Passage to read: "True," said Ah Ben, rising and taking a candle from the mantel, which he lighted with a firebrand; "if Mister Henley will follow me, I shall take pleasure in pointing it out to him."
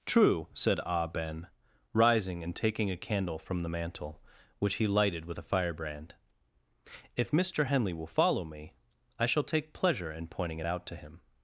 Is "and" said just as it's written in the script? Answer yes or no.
yes